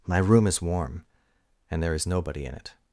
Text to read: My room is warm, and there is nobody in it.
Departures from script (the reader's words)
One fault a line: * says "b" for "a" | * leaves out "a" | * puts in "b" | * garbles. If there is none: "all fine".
all fine